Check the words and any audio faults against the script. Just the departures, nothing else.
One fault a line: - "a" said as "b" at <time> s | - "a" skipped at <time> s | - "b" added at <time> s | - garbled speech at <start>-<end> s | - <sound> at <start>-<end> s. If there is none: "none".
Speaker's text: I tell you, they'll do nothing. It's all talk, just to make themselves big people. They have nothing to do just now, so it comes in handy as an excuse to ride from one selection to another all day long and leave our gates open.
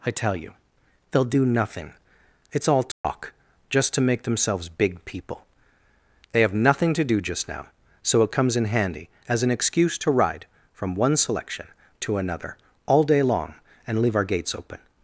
- dropout at 2.9-3.0 s